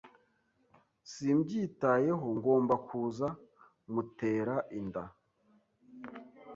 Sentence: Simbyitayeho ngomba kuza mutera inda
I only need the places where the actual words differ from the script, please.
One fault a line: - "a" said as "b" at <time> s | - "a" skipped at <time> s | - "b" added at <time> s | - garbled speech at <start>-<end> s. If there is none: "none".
none